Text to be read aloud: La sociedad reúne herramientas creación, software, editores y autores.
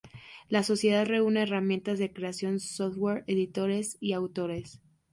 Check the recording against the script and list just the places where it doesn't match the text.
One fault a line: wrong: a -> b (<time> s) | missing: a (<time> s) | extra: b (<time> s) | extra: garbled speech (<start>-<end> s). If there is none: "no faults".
extra: de (2.0 s)